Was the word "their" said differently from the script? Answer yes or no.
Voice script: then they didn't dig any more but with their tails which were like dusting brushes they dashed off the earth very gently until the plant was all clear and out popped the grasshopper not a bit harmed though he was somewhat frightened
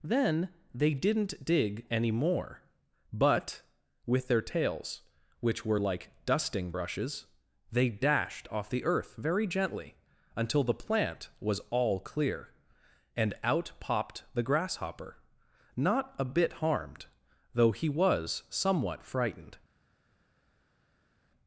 no